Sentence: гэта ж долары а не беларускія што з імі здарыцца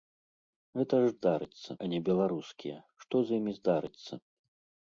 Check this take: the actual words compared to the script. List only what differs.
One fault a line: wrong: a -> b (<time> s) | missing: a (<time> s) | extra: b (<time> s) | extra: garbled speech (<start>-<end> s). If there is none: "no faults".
wrong: долары -> здарыцца (1.2 s)